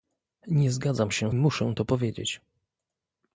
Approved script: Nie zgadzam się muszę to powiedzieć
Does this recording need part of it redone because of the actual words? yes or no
no